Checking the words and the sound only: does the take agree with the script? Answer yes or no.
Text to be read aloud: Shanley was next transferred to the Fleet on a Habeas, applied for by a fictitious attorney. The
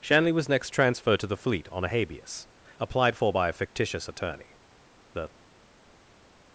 yes